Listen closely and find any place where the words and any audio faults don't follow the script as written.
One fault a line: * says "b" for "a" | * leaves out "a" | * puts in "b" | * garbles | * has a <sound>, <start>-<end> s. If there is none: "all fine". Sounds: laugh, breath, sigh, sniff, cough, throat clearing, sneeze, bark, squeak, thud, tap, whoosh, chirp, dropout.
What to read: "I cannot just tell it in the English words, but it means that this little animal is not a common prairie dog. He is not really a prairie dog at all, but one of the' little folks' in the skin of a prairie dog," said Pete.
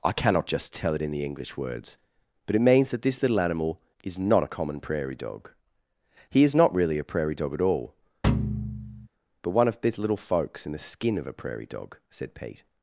* has a thud, 8.2-9.1 s
* says "these" for "the"